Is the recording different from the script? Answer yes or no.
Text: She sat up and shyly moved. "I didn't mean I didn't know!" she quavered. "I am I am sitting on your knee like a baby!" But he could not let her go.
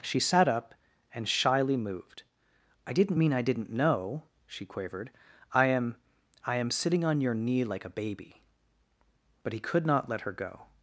no